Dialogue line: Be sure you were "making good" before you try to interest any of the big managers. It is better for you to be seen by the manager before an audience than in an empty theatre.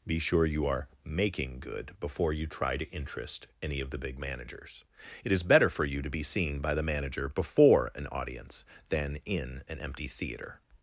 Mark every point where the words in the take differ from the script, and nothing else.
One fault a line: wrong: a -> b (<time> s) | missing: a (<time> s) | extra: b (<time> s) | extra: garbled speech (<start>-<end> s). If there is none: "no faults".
wrong: were -> are (0.7 s)